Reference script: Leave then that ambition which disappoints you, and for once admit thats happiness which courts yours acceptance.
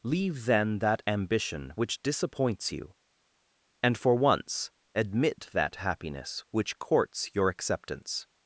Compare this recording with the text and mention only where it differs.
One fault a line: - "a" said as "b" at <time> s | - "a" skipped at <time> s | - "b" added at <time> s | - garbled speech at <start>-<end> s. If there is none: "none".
- "thats" said as "that" at 5.5 s
- "yours" said as "your" at 7.3 s